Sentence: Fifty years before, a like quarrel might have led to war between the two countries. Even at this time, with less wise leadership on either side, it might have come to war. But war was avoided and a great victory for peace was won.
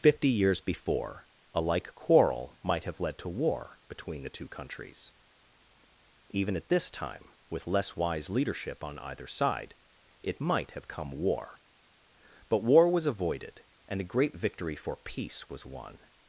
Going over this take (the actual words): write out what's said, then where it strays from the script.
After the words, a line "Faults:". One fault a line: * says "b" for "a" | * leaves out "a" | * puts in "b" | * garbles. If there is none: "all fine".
Fifty years before, a like quarrel might have led to war between the two countries. Even at this time, with less wise leadership on either side, it might have come war. But war was avoided and a great victory for peace was won.
Faults:
* leaves out "to"